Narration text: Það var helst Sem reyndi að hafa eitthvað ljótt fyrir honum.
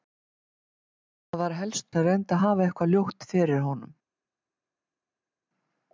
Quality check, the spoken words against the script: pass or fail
pass